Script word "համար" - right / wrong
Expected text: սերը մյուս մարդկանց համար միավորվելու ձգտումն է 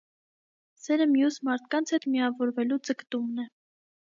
wrong